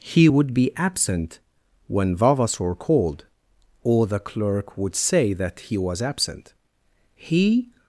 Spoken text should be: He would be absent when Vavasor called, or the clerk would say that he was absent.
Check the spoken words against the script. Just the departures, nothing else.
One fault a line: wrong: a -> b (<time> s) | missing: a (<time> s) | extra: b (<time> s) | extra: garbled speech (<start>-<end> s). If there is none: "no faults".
extra: He (7.2 s)